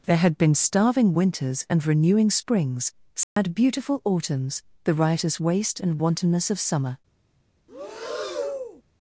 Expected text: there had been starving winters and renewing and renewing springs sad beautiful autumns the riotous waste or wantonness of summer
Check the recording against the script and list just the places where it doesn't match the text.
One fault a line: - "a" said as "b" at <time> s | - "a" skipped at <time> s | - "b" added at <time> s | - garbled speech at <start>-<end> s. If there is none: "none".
- "and renewing" skipped at 2.3 s
- "or" said as "and" at 5.8 s